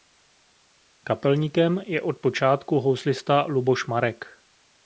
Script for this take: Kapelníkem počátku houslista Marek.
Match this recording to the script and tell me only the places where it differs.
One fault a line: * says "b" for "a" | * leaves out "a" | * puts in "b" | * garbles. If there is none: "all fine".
* puts in "je od"
* puts in "Luboš"